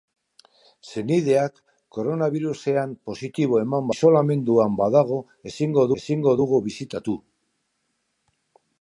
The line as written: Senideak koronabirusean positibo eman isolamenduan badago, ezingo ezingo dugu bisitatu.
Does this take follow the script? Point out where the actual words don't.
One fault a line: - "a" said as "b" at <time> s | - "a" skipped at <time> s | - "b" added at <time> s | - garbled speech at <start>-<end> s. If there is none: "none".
none